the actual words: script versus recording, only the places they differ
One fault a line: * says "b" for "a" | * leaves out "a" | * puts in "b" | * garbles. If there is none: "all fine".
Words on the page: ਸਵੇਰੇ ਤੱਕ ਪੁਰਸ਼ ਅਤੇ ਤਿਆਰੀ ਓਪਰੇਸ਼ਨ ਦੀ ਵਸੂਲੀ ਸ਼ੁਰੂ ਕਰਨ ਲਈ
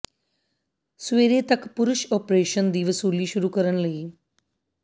* leaves out "ਅਤੇ ਤਿਆਰੀ"